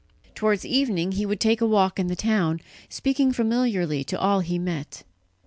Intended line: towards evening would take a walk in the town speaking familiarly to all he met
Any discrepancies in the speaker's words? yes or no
yes